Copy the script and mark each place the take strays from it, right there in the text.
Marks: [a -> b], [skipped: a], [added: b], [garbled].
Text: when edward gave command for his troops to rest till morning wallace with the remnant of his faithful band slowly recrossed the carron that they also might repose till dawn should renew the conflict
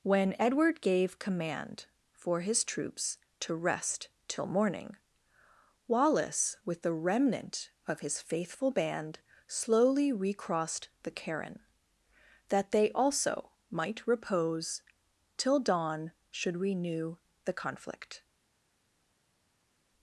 when edward gave command for his troops to rest till morning wallace with the remnant of his faithful band slowly recrossed the carron that they also might repose till dawn should renew the conflict